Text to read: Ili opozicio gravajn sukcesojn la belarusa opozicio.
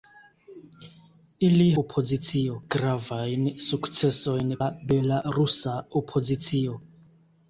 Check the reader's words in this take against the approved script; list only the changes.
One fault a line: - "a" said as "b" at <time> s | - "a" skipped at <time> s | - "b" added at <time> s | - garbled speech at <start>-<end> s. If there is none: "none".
none